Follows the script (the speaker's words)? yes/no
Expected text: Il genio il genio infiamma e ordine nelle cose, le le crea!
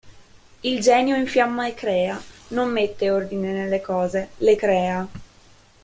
no